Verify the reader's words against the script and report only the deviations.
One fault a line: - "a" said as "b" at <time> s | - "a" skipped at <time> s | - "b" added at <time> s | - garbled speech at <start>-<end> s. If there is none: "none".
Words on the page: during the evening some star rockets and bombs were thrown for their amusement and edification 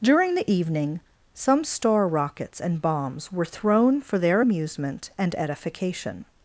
none